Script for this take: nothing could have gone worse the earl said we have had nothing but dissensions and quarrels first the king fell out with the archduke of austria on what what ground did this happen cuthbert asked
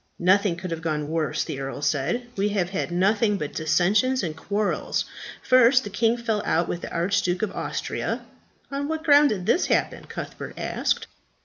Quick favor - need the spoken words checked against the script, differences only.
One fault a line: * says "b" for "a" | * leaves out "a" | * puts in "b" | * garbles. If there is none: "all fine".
* leaves out "what"